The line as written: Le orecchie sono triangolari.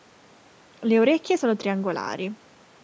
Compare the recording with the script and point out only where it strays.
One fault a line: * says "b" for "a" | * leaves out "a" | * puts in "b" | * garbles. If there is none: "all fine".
all fine